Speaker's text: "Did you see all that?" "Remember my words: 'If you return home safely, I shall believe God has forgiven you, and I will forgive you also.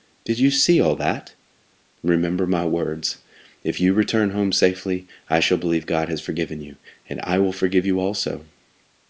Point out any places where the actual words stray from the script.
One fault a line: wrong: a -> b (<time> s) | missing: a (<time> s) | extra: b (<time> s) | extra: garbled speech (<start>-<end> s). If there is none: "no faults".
no faults